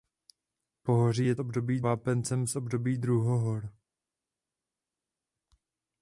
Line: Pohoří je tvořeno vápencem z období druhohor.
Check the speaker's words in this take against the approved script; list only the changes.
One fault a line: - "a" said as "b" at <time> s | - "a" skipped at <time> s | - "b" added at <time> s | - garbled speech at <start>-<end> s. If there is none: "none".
- "tvořeno" said as "období" at 1.4 s